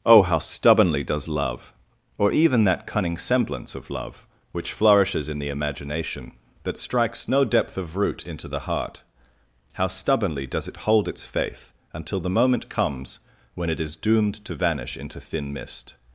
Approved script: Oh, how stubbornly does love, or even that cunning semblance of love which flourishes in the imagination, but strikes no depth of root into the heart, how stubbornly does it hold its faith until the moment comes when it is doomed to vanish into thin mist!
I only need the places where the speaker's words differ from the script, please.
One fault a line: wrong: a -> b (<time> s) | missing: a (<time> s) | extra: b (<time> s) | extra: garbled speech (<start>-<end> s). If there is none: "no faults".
wrong: but -> that (6.6 s)